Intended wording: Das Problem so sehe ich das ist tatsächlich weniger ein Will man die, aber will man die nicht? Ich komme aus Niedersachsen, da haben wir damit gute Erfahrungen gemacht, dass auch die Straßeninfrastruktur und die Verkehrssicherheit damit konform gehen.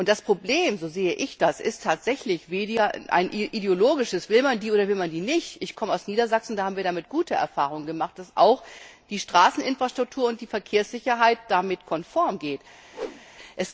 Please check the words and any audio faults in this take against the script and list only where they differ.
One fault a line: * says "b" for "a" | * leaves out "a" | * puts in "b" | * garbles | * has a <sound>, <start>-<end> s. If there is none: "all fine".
* puts in "ideologisches"
* says "oder" for "aber"
* has a whoosh, 12.9-13.3 s